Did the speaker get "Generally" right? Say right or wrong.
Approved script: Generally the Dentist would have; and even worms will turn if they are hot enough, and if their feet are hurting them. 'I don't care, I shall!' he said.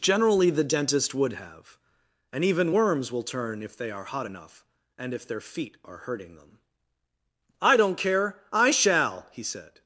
right